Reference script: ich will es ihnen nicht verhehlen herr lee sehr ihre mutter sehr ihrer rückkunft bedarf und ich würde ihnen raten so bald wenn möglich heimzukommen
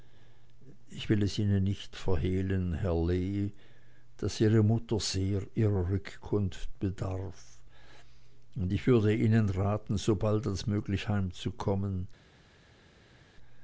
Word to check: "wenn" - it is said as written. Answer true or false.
false